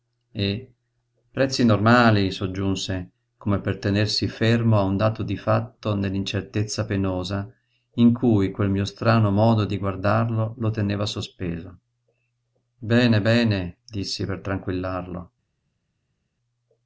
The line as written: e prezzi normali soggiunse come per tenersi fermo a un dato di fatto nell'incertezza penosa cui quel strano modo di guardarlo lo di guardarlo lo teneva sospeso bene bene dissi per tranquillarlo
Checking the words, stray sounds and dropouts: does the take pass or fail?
fail